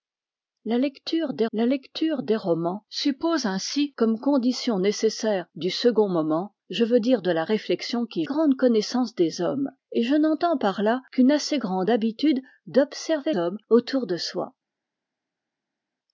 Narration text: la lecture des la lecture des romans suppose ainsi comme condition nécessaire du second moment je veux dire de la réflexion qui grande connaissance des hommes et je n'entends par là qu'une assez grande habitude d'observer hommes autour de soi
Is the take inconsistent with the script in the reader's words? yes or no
no